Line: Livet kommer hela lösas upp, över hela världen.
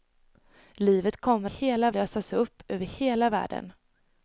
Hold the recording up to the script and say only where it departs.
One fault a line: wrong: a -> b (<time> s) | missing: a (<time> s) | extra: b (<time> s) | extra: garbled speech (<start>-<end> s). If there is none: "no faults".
no faults